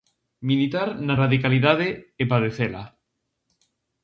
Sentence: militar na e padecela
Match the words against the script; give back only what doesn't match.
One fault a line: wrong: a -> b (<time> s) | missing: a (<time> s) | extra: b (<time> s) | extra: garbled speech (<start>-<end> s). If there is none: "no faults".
extra: radicalidade (1.2 s)